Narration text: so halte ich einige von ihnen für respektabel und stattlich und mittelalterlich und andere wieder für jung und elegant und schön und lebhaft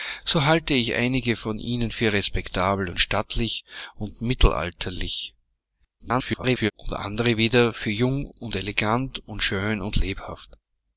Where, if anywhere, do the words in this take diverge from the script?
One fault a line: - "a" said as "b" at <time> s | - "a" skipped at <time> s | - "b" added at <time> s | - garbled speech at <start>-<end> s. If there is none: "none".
- garbled speech at 6.0-6.7 s